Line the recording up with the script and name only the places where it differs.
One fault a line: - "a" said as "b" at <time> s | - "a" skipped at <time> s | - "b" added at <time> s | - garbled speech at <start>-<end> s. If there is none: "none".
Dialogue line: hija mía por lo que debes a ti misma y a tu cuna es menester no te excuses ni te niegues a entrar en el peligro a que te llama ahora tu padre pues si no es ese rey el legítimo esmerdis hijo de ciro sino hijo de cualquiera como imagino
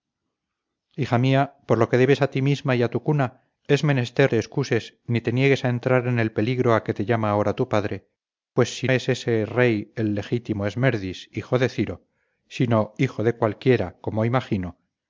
- "no" skipped at 4.3 s
- "no" skipped at 8.9 s